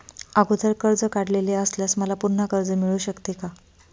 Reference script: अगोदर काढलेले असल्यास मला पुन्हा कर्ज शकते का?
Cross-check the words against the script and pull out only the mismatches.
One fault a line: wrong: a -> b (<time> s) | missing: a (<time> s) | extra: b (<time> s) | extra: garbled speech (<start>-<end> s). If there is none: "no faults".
extra: कर्ज (0.8 s)
extra: मिळू (2.7 s)